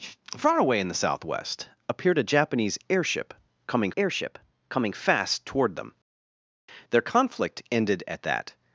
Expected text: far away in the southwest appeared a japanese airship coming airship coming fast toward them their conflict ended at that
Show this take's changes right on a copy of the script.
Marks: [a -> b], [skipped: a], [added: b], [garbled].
far away in the southwest appeared a japanese airship coming airship coming fast toward them their conflict ended at that